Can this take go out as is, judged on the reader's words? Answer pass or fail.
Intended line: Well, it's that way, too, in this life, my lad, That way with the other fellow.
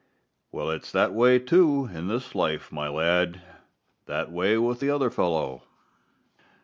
pass